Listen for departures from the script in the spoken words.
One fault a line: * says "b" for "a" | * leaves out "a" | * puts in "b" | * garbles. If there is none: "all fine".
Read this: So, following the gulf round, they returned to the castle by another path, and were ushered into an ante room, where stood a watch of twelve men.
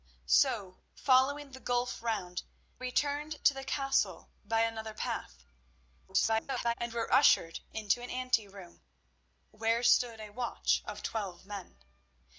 * leaves out "they"
* garbles